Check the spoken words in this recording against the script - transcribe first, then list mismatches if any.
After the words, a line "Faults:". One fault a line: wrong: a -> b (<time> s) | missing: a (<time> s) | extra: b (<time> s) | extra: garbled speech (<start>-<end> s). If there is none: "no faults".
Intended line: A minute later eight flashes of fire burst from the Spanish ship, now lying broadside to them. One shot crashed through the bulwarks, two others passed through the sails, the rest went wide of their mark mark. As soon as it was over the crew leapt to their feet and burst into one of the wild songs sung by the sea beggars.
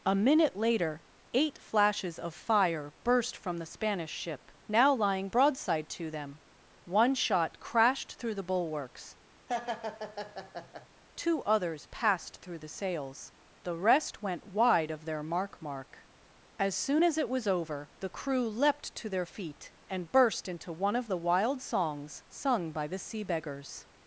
A minute later eight flashes of fire burst from the Spanish ship, now lying broadside to them. One shot crashed through the bulwarks, two others passed through the sails, the rest went wide of their mark mark. As soon as it was over the crew leapt to their feet and burst into one of the wild songs sung by the sea beggars.
Faults:
no faults